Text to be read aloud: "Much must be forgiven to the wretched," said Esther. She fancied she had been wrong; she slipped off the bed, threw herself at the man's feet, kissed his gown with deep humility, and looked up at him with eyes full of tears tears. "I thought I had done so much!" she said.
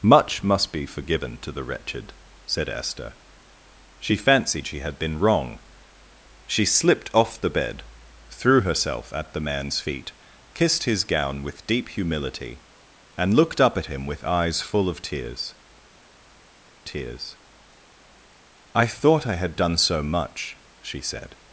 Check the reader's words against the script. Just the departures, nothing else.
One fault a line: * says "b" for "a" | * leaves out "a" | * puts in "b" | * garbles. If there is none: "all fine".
all fine